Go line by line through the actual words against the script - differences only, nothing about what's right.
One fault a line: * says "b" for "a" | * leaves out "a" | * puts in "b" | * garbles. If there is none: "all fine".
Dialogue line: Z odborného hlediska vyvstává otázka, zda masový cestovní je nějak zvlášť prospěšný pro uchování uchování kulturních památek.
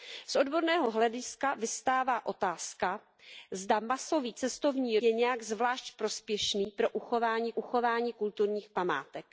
all fine